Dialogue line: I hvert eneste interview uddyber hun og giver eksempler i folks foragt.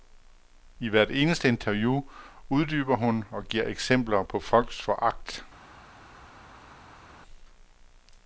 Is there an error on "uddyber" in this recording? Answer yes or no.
no